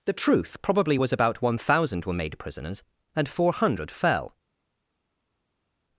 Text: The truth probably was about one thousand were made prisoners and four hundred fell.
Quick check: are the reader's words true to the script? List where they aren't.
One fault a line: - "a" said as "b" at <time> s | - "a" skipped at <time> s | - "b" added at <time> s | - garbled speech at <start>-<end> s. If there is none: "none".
none